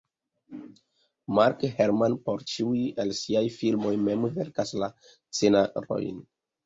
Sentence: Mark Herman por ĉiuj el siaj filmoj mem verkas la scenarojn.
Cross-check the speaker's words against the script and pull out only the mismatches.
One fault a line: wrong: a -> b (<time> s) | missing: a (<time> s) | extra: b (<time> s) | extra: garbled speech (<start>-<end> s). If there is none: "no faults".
no faults